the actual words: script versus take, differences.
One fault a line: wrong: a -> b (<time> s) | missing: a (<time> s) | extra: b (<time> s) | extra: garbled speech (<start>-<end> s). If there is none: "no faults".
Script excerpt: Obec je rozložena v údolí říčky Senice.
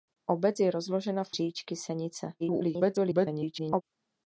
missing: údolí (1.4 s)
extra: garbled speech (2.4-3.8 s)